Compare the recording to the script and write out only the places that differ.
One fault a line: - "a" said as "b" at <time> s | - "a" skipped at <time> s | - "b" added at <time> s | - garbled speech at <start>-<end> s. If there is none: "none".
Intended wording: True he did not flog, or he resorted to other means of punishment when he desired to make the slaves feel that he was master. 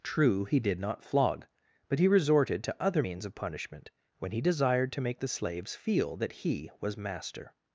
- "or" said as "but" at 1.9 s